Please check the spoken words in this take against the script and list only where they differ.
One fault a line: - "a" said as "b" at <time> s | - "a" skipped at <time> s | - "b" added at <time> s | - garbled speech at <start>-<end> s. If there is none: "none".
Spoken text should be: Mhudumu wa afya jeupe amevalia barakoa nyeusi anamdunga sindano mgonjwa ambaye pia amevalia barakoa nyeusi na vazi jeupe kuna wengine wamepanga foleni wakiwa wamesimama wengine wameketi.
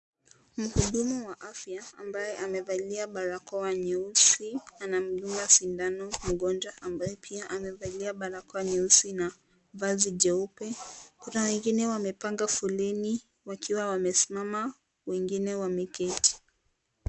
- "jeupe" said as "ambaye" at 2.0 s